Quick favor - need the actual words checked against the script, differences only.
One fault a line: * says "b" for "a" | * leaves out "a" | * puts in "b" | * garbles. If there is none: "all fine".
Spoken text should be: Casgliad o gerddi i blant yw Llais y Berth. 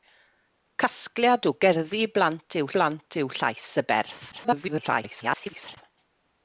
* puts in "blant yw"
* garbles